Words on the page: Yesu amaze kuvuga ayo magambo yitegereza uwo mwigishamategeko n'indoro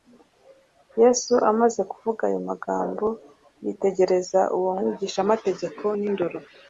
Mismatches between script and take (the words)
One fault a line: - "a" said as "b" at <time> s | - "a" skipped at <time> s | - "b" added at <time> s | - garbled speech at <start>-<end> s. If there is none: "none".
none